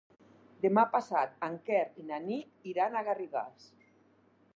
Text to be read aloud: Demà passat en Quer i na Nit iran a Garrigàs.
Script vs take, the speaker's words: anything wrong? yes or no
no